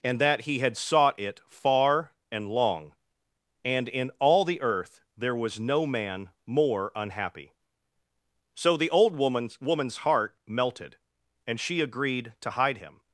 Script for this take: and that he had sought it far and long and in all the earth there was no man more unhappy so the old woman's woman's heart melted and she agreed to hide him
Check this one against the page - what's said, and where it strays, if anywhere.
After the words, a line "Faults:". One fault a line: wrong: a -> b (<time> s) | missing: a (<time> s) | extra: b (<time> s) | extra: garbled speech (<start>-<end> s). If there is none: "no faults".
and that he had sought it far and long and in all the earth there was no man more unhappy so the old woman's woman's heart melted and she agreed to hide him
Faults:
no faults